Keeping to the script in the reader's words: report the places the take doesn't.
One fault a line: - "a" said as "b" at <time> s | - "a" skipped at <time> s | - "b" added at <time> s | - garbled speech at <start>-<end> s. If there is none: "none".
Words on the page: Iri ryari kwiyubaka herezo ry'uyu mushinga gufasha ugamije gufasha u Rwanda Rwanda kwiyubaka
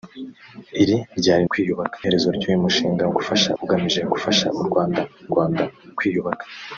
none